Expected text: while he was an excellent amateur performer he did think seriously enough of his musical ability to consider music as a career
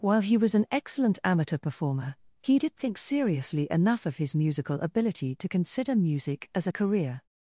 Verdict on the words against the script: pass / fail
pass